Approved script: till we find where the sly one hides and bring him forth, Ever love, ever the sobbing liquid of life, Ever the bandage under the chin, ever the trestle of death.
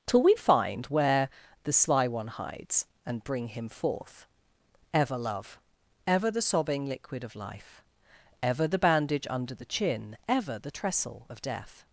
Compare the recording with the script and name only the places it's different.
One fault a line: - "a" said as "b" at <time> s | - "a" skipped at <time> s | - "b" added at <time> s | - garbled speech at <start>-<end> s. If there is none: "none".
none